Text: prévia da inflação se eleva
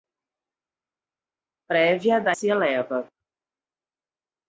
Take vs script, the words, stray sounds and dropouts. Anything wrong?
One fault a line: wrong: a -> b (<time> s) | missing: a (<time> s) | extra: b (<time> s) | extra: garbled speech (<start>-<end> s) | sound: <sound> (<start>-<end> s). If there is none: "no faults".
missing: inflação (2.4 s)